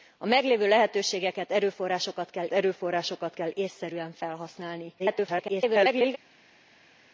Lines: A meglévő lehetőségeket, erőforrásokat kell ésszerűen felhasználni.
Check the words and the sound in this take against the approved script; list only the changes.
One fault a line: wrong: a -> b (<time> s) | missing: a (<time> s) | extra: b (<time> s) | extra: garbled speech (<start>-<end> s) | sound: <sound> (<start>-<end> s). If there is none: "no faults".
extra: erőforrásokat kell (2.5 s)
extra: garbled speech (5.0-6.2 s)